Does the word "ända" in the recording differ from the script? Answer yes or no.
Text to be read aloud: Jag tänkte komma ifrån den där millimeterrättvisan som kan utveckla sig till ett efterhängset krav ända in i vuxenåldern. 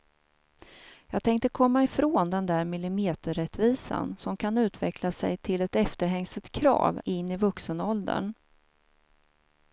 yes